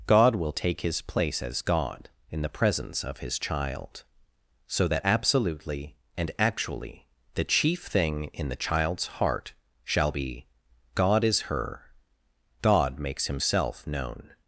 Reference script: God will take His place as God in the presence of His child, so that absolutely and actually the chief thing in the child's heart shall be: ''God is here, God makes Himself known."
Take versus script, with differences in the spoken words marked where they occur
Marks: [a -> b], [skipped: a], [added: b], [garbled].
God will take His place as God in the presence of His child, so that absolutely and actually the chief thing in the child's heart shall be: ''God is [here, -> her] God makes Himself known."